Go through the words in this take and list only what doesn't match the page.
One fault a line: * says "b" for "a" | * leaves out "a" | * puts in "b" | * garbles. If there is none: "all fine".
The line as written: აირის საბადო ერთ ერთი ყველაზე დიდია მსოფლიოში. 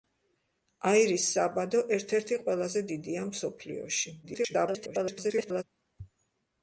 * garbles